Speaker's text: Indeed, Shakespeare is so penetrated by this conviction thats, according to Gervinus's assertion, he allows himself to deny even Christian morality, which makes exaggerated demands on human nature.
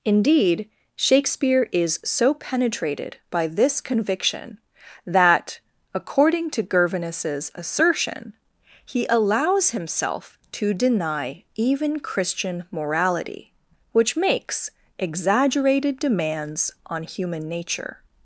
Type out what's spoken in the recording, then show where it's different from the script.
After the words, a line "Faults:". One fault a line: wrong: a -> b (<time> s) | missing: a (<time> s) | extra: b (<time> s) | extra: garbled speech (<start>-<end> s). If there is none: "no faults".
Indeed, Shakespeare is so penetrated by this conviction that, according to Gervinus's assertion, he allows himself to deny even Christian morality, which makes exaggerated demands on human nature.
Faults:
wrong: thats -> that (5.0 s)